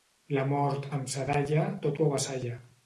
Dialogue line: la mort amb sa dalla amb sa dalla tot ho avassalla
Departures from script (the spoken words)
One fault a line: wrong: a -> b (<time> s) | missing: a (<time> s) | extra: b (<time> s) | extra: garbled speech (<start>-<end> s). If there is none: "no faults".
missing: amb sa dalla (1.7 s)